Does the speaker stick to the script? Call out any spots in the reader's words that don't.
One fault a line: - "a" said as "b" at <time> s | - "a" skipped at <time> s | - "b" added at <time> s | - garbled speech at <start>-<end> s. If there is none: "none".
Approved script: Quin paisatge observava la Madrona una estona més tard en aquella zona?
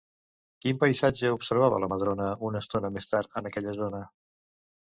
none